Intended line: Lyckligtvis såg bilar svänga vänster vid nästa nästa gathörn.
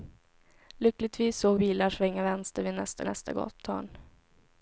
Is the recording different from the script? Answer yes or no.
no